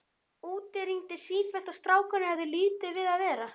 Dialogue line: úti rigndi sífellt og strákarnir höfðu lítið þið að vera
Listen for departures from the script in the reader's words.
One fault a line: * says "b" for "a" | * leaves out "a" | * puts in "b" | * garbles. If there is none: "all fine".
* says "við" for "þið"